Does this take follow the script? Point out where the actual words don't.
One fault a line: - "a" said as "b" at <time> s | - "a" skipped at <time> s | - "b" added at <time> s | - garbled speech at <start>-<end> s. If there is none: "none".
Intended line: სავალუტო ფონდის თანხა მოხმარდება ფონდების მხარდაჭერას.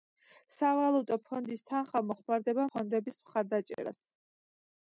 none